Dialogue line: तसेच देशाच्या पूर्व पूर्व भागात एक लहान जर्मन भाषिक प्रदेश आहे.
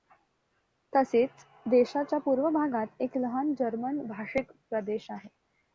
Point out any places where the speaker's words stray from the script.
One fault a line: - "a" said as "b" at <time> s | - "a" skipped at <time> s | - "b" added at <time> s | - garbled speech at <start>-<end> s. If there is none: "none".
- "पूर्व" skipped at 2.5 s